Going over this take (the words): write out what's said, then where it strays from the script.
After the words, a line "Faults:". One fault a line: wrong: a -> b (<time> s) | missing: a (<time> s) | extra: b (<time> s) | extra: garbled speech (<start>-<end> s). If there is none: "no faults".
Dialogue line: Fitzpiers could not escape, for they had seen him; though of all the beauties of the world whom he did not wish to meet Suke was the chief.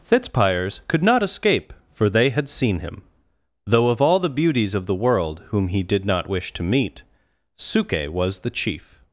Fitzpiers could not escape, for they had seen him; though of all the beauties of the world whom he did not wish to meet Suke was the chief.
Faults:
no faults